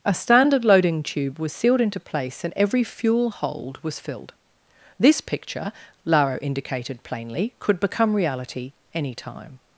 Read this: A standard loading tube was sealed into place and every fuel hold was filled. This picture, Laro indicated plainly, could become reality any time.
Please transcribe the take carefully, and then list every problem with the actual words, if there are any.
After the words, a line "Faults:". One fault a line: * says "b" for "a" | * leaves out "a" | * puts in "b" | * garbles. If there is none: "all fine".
A standard loading tube was sealed into place and every fuel hold was filled. This picture, Laro indicated plainly, could become reality any time.
Faults:
all fine